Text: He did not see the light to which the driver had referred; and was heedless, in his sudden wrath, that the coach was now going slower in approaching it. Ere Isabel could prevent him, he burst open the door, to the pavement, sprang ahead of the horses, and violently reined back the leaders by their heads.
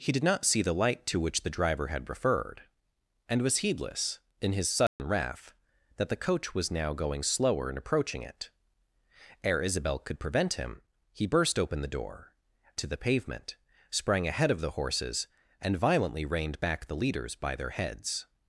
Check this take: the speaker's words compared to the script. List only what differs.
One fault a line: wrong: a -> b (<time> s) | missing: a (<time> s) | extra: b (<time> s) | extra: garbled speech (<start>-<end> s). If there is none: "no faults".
no faults